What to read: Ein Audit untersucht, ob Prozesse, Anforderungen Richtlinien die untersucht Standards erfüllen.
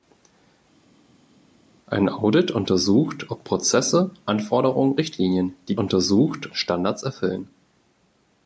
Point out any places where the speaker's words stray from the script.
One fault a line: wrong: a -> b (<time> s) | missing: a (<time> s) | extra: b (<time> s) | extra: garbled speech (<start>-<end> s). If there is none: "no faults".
no faults